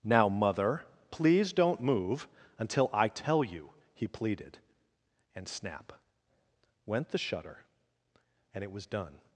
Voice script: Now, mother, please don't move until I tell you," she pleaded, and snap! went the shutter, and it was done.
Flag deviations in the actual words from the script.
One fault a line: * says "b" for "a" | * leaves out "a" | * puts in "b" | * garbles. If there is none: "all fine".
* says "he" for "she"